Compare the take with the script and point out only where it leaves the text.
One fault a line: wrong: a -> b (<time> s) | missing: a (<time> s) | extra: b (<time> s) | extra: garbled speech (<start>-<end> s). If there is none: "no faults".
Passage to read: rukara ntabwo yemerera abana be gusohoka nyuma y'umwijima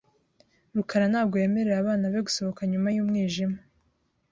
no faults